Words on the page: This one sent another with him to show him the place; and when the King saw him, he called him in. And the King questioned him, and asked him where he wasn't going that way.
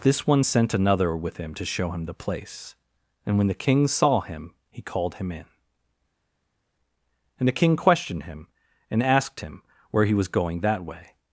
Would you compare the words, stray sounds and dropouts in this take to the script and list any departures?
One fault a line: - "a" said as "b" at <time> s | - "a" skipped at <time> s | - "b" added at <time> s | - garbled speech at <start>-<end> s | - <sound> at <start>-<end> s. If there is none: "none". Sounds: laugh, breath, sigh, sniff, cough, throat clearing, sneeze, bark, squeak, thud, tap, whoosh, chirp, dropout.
- "wasn't" said as "was" at 10.1 s